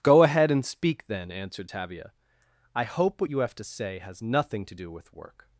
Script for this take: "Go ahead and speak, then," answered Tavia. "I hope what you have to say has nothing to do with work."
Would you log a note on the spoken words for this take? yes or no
no